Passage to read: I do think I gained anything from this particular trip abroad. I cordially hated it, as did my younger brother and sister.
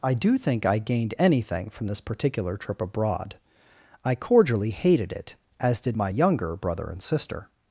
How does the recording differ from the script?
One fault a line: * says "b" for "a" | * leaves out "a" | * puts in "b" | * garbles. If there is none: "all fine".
all fine